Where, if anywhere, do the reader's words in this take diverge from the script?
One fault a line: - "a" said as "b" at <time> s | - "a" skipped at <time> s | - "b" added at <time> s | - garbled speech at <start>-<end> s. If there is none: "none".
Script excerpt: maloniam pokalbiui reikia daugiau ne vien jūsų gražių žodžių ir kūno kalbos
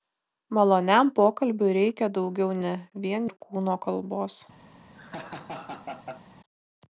- "jūsų gražių žodžių" skipped at 3.3 s